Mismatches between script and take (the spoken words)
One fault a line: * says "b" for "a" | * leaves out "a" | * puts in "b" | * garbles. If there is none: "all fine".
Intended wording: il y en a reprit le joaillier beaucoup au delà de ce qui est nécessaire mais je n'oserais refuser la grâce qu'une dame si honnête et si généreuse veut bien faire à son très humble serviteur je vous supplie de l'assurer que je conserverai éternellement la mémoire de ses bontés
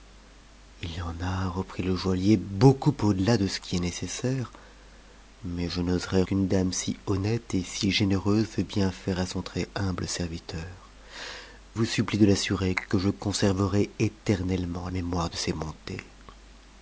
* leaves out "refuser la grâce"
* leaves out "je"
* leaves out "la"